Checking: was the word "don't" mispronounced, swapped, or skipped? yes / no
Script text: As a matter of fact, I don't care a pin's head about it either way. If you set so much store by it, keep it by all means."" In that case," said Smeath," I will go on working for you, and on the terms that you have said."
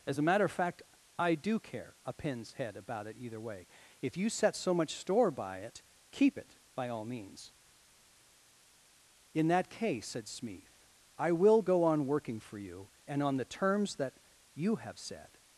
yes